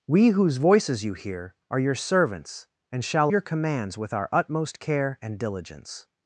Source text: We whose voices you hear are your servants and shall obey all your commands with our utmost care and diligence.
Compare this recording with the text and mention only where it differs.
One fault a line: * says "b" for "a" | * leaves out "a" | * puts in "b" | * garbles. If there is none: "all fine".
* leaves out "obey all"